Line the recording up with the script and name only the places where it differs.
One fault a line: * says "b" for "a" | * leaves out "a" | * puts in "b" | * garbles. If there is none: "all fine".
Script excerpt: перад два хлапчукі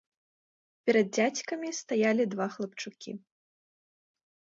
* puts in "дзядзькамі стаялі"